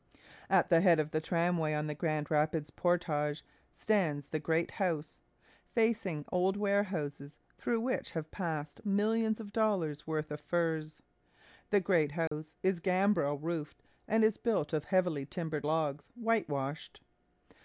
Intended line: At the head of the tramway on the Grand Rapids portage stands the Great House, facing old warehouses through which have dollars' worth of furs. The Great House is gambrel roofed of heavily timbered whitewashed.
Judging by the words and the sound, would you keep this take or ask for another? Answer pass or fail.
fail